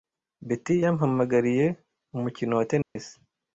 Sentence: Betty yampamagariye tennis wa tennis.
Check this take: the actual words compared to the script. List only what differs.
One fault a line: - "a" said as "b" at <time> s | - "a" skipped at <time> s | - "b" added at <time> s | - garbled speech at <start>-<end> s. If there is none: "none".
- "tennis" said as "umukino" at 2.1 s